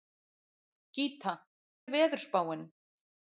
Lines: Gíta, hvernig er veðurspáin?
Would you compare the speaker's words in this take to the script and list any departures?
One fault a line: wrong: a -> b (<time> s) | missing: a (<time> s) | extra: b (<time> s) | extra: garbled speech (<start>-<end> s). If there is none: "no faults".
missing: hvernig (1.3 s)